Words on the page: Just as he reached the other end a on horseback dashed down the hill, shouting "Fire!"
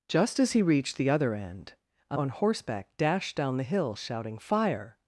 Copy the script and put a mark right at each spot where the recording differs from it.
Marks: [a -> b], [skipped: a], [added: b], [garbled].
Just as he reached the other end a on horseback dashed down the hill, shouting "Fire!"